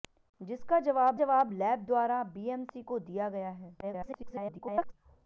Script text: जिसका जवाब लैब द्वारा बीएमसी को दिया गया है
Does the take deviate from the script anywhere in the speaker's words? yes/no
yes